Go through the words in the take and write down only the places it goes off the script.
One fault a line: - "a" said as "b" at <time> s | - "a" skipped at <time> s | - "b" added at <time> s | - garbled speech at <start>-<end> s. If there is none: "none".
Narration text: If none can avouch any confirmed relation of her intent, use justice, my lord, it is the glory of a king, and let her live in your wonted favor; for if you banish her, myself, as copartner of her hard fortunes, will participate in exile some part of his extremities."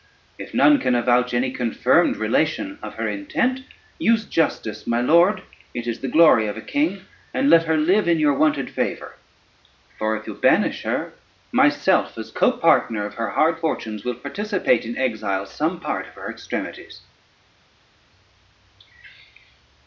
- "his" said as "her" at 16.1 s